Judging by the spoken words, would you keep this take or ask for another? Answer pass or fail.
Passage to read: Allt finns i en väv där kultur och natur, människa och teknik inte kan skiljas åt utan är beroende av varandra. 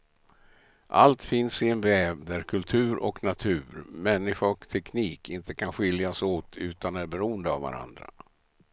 pass